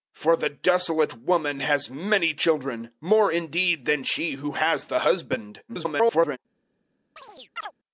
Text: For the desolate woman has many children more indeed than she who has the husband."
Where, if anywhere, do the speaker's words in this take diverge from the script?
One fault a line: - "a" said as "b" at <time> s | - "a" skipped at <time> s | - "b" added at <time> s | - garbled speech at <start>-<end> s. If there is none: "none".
- garbled speech at 5.7-6.4 s